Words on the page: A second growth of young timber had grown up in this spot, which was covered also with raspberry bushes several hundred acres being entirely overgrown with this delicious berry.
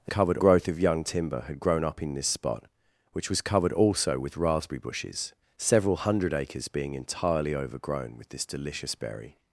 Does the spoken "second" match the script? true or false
false